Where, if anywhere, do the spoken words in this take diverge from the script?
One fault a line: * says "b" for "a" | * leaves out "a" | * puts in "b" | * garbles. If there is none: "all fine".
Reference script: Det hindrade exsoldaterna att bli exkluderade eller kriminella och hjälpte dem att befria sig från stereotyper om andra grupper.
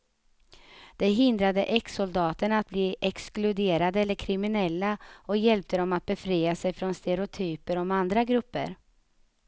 all fine